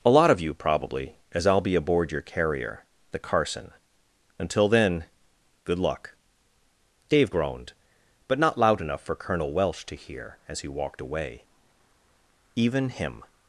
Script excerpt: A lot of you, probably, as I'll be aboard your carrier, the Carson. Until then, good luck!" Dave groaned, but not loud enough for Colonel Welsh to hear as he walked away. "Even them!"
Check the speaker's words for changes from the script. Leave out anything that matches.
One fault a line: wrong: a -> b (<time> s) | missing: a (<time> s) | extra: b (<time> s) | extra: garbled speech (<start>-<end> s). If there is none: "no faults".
wrong: them -> him (12.9 s)